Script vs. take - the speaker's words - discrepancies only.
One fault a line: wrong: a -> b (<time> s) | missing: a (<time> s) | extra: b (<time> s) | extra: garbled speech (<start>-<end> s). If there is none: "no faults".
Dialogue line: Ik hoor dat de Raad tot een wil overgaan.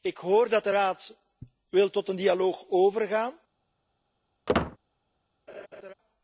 extra: dialoog (2.2 s)